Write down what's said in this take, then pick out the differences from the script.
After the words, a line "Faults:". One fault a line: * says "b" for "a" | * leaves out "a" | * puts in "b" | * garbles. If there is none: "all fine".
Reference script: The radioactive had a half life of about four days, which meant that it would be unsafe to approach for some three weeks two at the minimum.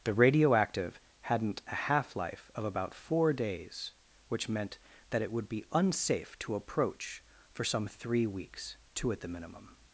The radioactive hadn't a half life of about four days, which meant that it would be unsafe to approach for some three weeks two at the minimum.
Faults:
* says "hadn't" for "had"